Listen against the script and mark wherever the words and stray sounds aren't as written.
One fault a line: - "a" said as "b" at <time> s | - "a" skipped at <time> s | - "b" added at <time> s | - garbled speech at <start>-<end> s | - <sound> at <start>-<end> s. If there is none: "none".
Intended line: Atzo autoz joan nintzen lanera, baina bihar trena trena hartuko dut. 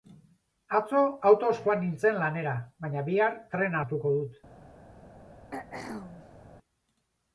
- "trena" skipped at 3.8 s
- throat clearing at 5.5-6.6 s